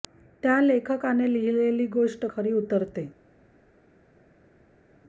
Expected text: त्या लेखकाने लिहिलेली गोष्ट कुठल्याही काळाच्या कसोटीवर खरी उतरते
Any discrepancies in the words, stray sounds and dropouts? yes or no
yes